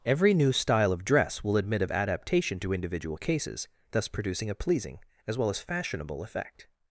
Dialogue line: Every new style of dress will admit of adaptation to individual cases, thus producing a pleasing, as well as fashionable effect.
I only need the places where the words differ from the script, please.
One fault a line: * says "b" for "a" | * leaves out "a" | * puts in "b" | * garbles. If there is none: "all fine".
all fine